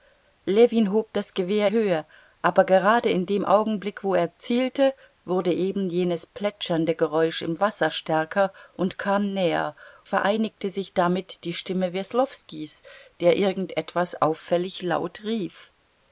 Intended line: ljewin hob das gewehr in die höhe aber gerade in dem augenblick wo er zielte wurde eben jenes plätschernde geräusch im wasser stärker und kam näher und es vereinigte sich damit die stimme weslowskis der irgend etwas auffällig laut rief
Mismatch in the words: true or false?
true